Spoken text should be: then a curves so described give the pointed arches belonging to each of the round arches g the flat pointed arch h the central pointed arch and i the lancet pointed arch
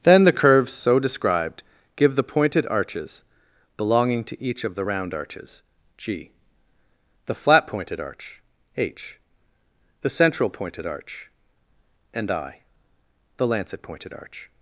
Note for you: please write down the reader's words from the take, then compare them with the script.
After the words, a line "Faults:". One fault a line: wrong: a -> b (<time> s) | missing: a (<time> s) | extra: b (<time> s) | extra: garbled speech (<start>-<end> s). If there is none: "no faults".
then the curves so described give the pointed arches belonging to each of the round arches g the flat pointed arch h the central pointed arch and i the lancet pointed arch
Faults:
wrong: a -> the (0.2 s)